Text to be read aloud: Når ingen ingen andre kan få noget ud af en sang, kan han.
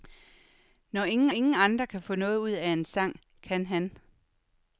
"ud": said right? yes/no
yes